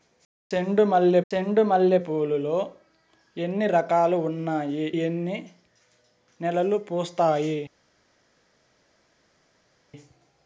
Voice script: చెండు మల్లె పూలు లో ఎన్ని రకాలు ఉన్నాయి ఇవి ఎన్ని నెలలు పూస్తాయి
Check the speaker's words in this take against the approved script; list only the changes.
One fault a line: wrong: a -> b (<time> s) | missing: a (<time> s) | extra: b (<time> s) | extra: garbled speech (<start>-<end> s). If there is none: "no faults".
extra: చెండు మల్లె (1.3 s)
missing: ఇవి (4.9 s)